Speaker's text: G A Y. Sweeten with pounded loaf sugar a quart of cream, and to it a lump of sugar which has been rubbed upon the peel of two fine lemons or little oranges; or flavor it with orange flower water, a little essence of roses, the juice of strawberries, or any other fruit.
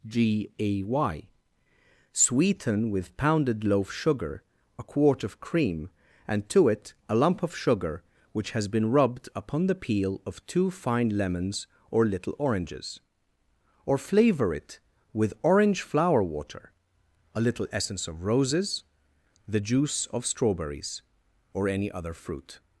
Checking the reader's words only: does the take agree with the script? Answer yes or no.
yes